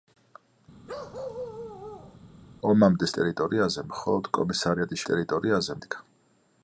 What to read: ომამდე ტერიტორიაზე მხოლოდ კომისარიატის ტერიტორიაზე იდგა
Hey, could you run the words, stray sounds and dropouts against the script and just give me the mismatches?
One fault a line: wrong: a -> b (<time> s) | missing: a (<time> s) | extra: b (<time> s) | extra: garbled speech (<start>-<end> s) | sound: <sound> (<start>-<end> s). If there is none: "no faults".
sound: bark (0.9-2.2 s)